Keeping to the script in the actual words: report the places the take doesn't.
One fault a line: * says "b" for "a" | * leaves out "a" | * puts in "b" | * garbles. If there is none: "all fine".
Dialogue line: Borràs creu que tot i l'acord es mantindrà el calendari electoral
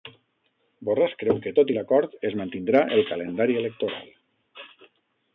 all fine